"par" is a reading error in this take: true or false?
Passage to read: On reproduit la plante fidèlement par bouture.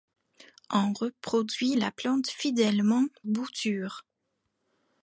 true